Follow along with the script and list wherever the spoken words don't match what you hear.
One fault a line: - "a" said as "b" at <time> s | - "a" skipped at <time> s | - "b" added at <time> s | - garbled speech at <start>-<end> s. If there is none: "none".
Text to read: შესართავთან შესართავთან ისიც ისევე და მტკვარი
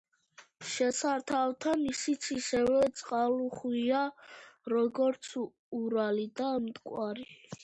- "შესართავთან" skipped at 1.8 s
- "წყალუხვია როგორც ურალი" added at 3.0 s